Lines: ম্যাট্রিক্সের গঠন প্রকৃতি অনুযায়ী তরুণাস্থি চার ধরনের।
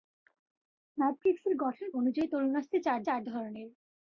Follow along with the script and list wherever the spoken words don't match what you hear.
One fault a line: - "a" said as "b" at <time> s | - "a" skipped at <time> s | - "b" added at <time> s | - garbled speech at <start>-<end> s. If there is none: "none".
- "প্রকৃতি" skipped at 1.9 s
- "চার" added at 3.0 s